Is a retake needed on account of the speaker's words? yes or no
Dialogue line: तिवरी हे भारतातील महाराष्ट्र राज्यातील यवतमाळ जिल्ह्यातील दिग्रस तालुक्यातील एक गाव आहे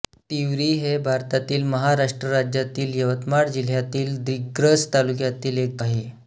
yes